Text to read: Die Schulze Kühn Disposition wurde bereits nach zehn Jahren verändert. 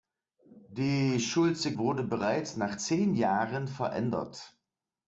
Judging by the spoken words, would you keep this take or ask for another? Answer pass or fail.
fail